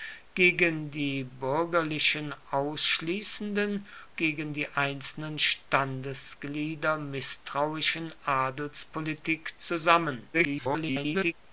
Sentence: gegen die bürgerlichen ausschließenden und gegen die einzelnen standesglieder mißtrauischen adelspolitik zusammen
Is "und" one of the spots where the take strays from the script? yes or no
yes